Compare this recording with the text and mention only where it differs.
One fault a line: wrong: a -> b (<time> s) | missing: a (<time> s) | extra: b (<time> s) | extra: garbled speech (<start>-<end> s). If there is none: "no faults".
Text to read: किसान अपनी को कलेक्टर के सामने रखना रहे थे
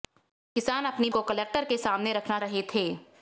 no faults